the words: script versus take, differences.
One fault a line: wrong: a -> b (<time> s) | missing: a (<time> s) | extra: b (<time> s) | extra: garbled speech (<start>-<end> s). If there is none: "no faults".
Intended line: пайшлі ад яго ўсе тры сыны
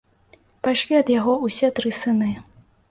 no faults